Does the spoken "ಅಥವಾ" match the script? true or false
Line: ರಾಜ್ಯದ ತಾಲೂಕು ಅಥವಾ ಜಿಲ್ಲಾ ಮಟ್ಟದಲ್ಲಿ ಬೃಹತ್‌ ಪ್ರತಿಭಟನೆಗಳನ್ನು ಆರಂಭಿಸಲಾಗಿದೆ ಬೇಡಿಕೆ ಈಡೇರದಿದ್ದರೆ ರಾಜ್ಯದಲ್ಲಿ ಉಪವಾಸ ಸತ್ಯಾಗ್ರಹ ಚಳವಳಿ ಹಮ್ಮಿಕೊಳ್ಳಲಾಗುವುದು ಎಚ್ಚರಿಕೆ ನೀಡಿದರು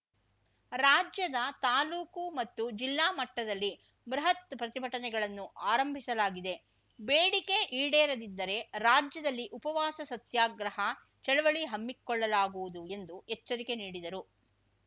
false